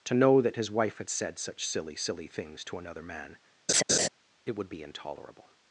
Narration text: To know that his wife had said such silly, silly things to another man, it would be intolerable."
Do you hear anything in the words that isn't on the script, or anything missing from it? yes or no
no